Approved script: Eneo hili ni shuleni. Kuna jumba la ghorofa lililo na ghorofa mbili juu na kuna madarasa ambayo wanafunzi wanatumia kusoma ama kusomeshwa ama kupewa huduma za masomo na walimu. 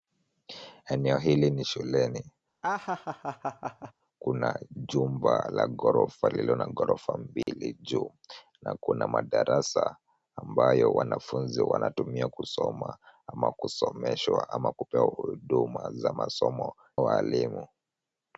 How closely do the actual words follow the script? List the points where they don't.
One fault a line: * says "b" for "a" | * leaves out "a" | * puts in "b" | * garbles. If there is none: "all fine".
* leaves out "na"